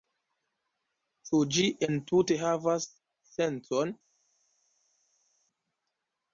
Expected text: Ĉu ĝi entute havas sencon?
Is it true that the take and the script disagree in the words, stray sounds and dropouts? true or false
false